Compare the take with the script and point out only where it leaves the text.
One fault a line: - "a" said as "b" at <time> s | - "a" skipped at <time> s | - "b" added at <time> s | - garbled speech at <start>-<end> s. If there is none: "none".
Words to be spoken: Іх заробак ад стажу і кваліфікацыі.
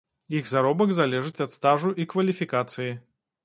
- "залежыць" added at 1.0 s